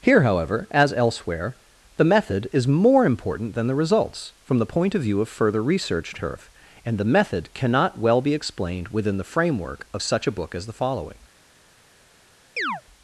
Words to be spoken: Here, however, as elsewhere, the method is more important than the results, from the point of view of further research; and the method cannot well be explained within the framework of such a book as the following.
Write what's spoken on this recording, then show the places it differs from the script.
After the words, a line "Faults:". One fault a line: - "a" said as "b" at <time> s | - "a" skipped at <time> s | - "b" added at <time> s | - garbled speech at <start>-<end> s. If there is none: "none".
Here, however, as elsewhere, the method is more important than the results, from the point of view of further research; turf and the method cannot well be explained within the framework of such a book as the following.
Faults:
- "turf" added at 6.2 s